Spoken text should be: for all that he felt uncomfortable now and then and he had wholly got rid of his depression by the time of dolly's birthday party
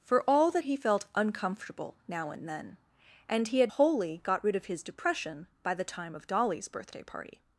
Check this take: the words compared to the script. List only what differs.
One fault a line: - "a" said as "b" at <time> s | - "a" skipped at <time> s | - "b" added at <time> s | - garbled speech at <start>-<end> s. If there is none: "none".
none